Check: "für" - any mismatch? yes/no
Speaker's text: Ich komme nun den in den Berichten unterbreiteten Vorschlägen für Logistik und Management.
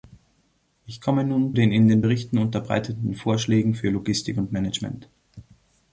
no